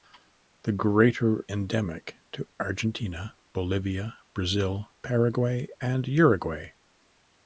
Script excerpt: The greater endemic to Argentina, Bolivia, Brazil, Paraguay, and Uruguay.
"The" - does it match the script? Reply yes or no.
yes